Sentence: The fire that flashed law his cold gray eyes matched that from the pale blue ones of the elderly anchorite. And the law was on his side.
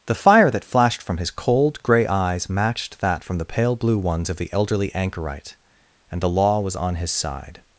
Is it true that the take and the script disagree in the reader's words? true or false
true